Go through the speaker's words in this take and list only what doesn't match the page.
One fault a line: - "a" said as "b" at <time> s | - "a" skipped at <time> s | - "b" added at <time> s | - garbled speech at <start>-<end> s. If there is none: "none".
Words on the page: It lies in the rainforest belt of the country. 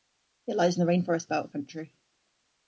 - "the" skipped at 1.5 s